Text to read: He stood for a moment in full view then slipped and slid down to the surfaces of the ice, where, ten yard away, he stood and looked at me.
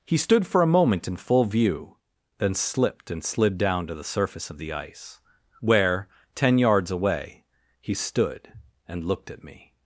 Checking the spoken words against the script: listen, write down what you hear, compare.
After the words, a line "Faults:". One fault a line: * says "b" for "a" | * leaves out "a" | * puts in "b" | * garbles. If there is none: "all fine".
He stood for a moment in full view then slipped and slid down to the surface of the ice, where, ten yards away, he stood and looked at me.
Faults:
* says "surface" for "surfaces"
* says "yards" for "yard"